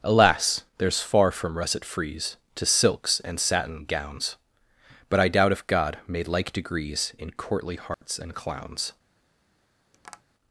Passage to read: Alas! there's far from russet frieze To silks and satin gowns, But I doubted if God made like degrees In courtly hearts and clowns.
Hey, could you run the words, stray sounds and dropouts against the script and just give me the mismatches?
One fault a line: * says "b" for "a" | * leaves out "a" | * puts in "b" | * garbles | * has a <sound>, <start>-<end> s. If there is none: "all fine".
* says "doubt" for "doubted"
* has a dropout, 7.9-8.0 s
* has a tap, 9.9-10.2 s